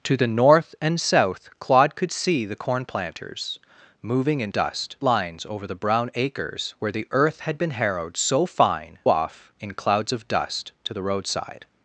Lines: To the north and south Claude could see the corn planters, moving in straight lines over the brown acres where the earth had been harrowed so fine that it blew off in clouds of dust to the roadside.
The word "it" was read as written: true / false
false